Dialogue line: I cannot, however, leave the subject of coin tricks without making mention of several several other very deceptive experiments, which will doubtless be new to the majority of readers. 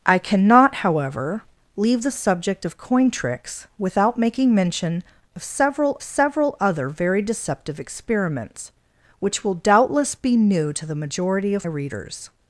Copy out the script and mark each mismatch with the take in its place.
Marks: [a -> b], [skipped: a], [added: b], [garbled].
I cannot, however, leave the subject of coin tricks without making mention of several several other very deceptive experiments, which will doubtless be new to the majority of readers.